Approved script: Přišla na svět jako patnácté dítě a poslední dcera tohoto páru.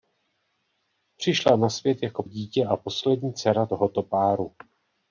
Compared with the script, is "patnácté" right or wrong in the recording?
wrong